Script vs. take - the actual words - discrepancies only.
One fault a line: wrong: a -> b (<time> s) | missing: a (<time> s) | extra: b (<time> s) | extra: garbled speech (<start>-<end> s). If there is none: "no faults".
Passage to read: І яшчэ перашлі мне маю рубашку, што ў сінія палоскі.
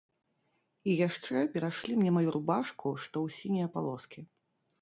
no faults